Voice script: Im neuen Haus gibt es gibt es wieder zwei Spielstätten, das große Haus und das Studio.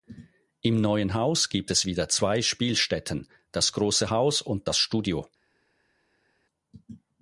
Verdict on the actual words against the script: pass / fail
fail